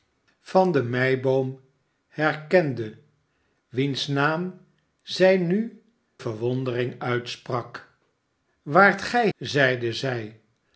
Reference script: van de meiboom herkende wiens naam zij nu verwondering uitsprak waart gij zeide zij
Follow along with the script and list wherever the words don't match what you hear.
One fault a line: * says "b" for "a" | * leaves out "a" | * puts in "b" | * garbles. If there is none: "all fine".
all fine